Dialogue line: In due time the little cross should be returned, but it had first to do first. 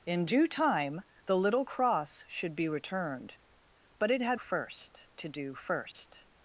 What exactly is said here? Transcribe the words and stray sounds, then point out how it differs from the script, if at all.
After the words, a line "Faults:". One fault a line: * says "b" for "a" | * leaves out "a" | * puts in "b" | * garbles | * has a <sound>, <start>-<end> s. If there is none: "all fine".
In due time the little cross should be returned, but it had first to do first.
Faults:
* has a dropout, 5.9-5.9 s